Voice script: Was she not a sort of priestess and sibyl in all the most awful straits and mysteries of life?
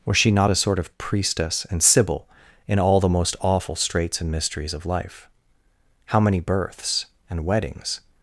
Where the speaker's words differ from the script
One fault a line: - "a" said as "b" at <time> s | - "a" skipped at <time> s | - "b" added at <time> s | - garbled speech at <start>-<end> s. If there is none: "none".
- "How many births and weddings" added at 6.1 s